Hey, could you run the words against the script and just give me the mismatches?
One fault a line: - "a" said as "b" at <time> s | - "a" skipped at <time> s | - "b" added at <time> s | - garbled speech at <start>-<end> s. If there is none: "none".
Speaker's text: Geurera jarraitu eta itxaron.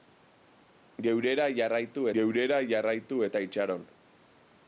- "geurera jarraitu" added at 2.2 s